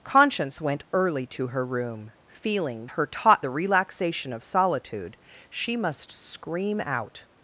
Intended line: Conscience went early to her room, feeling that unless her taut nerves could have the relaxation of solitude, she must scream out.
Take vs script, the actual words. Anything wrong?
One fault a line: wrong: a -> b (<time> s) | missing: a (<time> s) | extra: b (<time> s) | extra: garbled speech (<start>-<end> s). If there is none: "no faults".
missing: that unless (2.9 s)
missing: nerves could have (3.4 s)